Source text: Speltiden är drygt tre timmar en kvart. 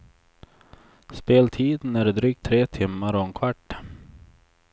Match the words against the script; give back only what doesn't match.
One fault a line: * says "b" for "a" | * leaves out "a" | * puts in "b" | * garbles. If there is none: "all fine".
* puts in "och"